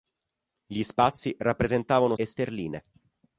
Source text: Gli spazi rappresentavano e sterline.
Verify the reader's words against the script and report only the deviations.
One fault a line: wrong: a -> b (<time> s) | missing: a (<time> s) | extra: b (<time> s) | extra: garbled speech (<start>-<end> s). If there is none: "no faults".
no faults